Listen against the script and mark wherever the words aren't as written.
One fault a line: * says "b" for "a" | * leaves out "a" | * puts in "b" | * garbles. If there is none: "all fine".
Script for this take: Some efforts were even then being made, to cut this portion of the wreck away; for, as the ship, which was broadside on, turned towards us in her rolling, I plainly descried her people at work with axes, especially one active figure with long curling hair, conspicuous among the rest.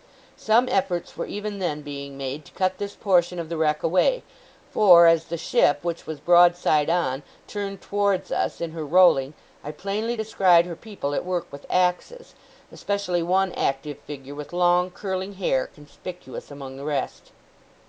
all fine